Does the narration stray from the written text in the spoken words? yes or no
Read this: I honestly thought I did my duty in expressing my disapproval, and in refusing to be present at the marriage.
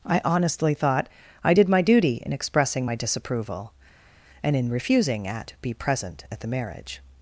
yes